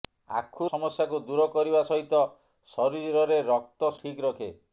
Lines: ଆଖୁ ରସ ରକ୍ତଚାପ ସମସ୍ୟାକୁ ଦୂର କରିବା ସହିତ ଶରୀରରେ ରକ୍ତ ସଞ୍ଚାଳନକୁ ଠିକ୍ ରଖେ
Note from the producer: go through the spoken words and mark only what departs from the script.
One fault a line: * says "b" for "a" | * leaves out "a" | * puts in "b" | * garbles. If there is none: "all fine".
* leaves out "ରସ ରକ୍ତଚାପ"
* leaves out "ସଞ୍ଚାଳନକୁ"